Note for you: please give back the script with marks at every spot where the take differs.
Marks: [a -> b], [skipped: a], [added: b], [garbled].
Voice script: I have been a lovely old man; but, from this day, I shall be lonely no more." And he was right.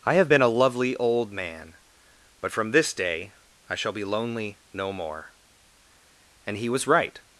I have been a lovely old man; but, from this day, I shall be lonely no more." And he was right.